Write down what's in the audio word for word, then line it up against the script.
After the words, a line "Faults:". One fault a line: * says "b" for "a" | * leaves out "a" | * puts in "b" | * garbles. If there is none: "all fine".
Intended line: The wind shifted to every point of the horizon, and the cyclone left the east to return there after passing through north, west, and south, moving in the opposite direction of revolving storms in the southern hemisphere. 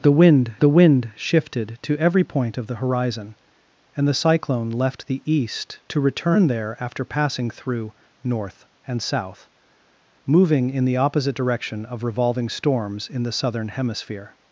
The wind the wind shifted to every point of the horizon, and the cyclone left the east to return there after passing through north, and south, moving in the opposite direction of revolving storms in the southern hemisphere.
Faults:
* puts in "the wind"
* leaves out "west"